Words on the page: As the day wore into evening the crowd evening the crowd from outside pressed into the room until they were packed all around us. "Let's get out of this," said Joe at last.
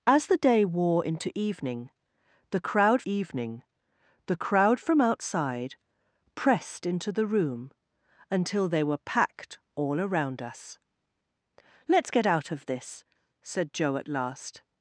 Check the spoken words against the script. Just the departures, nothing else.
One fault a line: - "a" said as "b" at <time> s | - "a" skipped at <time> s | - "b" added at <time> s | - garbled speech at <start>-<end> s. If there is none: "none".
none